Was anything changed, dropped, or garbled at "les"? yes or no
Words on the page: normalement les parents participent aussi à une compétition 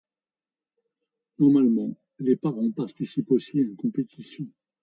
no